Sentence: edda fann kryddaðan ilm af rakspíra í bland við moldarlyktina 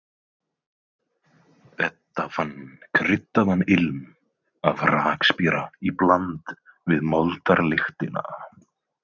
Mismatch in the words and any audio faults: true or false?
false